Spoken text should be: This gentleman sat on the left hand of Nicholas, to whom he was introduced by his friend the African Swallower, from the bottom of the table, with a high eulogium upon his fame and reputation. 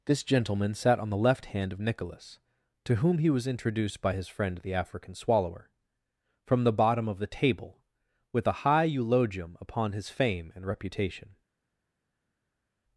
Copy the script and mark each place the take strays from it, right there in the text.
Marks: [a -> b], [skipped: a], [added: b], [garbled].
This gentleman sat on the left hand of Nicholas, to whom he was introduced by his friend the African Swallower, from the bottom of the table, with a high eulogium upon his fame and reputation.